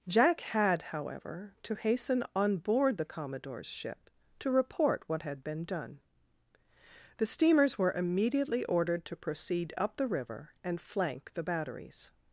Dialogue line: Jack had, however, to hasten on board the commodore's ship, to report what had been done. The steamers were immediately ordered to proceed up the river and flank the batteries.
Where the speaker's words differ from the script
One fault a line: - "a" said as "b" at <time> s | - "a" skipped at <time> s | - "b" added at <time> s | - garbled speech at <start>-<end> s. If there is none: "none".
none